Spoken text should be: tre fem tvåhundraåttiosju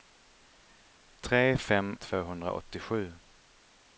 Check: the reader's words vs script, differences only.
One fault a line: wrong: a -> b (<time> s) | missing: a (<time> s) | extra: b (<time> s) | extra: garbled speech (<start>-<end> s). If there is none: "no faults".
no faults